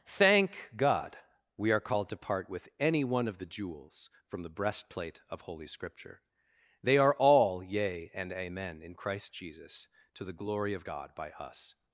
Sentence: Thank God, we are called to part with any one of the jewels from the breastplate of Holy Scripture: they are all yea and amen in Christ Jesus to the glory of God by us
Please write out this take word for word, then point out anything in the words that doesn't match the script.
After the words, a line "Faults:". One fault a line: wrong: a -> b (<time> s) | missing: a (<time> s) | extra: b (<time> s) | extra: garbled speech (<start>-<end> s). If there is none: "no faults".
Thank God, we are called to part with any one of the jewels from the breastplate of Holy Scripture: they are all yea and amen in Christ Jesus to the glory of God by us
Faults:
no faults